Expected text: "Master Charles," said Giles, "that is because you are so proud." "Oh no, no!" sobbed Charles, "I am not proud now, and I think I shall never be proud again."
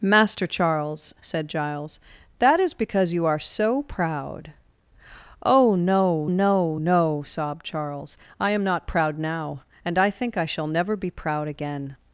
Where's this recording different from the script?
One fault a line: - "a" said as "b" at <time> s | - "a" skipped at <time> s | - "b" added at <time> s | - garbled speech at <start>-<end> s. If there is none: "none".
- "no" added at 6.8 s